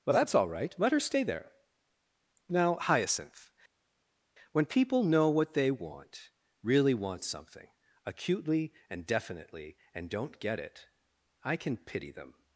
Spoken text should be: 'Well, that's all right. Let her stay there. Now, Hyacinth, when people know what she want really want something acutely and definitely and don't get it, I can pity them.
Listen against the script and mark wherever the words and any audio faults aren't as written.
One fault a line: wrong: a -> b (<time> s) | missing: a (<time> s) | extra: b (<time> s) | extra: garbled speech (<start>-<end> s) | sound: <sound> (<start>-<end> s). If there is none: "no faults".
wrong: she -> they (5.5 s)